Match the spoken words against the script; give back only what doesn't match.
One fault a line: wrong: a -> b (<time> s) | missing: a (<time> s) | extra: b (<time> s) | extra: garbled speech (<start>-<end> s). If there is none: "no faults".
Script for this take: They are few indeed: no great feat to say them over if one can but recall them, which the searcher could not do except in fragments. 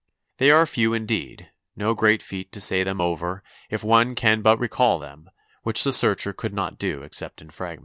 no faults